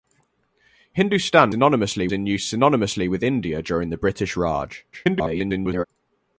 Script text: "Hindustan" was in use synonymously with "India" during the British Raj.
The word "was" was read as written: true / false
false